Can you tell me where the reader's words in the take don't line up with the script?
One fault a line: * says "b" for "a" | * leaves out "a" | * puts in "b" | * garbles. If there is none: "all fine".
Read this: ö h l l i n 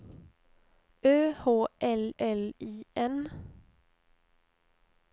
all fine